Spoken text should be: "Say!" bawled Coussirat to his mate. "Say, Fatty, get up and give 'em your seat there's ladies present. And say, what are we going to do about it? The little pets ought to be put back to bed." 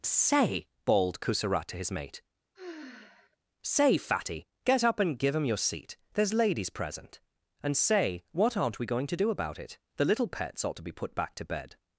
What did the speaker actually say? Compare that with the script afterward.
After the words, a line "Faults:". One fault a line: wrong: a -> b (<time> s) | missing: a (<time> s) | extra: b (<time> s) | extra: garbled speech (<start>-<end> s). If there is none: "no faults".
"Say!" bawled Coussirat to his mate. "Say, Fatty, get up and give 'em your seat there's ladies present. And say, what aren't we going to do about it? The little pets ought to be put back to bed."
Faults:
wrong: are -> aren't (8.6 s)